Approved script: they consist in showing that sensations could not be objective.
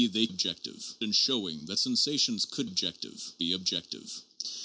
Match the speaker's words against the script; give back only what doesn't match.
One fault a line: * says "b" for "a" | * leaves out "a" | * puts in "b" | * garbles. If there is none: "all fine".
* says "objective" for "consist"
* says "objective" for "not"